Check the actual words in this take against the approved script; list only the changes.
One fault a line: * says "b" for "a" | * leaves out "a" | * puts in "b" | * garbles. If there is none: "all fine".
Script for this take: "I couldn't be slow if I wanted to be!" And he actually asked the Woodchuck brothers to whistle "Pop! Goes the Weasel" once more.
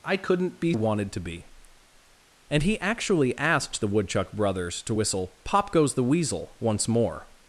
* leaves out "slow if I"